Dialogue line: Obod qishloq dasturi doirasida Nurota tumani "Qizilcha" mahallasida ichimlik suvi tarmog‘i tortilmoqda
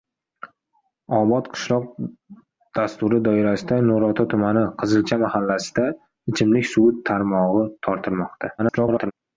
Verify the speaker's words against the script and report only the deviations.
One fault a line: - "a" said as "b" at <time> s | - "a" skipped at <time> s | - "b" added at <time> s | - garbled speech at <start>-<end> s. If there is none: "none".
- garbled speech at 8.6-9.1 s